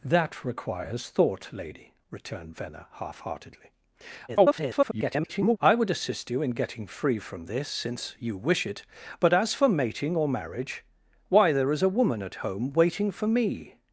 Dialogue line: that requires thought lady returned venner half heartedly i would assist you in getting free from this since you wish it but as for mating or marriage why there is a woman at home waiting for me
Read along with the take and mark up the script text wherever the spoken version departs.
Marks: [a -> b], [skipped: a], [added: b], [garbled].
that requires thought lady returned venner half heartedly [garbled] i would assist you in getting free from this since you wish it but as for mating or marriage why there is a woman at home waiting for me